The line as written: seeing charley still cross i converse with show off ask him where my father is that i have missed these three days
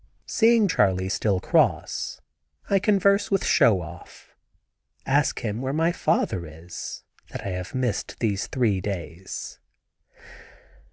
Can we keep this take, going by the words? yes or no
yes